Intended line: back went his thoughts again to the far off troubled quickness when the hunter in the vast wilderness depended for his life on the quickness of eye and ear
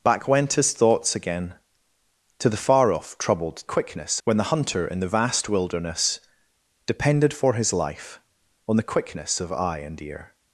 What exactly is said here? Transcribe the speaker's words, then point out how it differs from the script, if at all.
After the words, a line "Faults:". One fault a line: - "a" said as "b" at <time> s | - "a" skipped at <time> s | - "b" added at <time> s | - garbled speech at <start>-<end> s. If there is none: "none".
back went his thoughts again to the far off troubled quickness when the hunter in the vast wilderness depended for his life on the quickness of eye and ear
Faults:
none